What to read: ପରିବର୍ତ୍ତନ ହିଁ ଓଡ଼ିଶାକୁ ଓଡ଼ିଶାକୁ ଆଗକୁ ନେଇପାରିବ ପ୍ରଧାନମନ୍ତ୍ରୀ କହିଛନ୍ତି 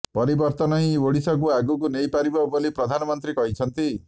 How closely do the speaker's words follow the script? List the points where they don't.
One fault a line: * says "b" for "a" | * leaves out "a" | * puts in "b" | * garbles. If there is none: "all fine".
* leaves out "ଓଡ଼ିଶାକୁ"
* puts in "ବୋଲି"